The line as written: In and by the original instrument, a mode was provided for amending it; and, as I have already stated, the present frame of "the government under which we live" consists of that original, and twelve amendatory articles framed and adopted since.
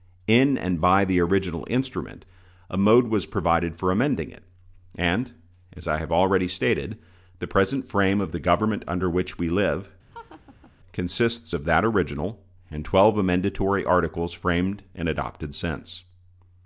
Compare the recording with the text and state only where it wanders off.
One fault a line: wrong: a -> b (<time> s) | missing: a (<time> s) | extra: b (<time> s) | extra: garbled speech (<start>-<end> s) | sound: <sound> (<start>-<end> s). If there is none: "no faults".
sound: laugh (10.1-10.7 s)